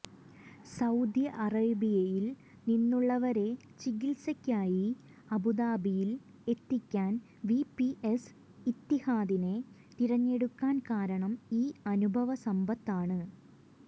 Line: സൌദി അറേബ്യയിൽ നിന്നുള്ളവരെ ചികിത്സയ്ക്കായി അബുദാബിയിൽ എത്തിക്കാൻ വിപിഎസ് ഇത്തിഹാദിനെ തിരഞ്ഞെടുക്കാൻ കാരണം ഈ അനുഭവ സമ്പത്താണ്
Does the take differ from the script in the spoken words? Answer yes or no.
no